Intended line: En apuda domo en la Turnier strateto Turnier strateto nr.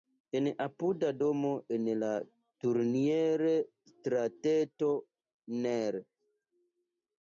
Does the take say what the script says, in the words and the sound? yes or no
no